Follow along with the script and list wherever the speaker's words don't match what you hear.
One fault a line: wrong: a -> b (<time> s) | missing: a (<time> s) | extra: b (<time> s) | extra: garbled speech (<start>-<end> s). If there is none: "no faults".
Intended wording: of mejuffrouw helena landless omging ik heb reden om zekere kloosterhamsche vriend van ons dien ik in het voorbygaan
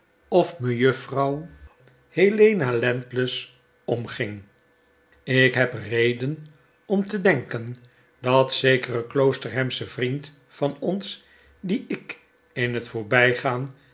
extra: te denken dat (7.1 s)